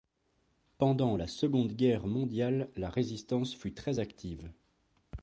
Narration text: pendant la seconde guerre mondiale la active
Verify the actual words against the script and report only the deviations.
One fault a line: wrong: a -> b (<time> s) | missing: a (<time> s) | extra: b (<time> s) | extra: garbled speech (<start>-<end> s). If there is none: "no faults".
extra: résistance fut très (2.9 s)